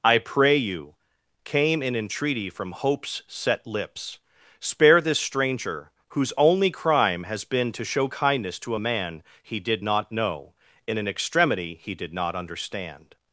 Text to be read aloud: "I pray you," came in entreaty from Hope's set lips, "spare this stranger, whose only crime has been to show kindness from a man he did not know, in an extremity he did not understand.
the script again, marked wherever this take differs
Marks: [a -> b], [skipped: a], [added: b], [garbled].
"I pray you," came in entreaty from Hope's set lips, "spare this stranger, whose only crime has been to show kindness [from -> to] a man he did not know, in an extremity he did not understand.